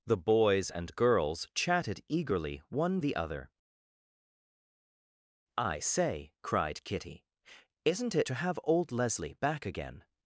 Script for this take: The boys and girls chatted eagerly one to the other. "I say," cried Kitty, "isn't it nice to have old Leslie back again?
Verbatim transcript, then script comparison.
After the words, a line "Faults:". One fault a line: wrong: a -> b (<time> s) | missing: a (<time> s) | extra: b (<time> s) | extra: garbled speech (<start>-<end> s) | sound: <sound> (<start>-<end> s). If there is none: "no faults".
The boys and girls chatted eagerly one the other. "I say," cried Kitty, "isn't it to have old Leslie back again?
Faults:
missing: to (3.0 s)
missing: nice (8.3 s)